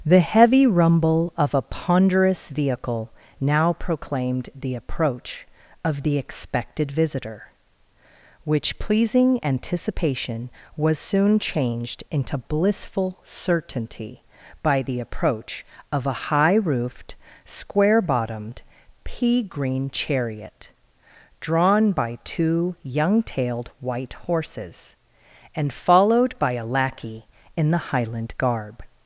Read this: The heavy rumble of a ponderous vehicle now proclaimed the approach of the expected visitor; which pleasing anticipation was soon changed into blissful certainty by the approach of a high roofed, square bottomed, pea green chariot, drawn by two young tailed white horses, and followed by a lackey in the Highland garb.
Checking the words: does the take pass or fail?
pass